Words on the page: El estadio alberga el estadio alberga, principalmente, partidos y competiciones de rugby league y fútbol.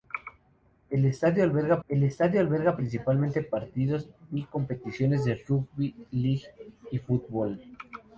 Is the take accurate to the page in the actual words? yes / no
yes